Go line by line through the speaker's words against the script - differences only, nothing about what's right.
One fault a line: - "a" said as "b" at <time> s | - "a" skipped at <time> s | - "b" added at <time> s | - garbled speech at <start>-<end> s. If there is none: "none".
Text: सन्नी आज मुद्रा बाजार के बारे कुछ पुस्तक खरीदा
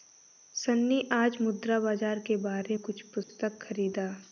none